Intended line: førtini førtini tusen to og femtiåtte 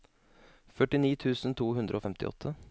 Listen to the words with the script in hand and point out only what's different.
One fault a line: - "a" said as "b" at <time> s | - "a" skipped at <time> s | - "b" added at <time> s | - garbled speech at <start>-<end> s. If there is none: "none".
- "førtini" skipped at 1.1 s
- "hundre" added at 1.8 s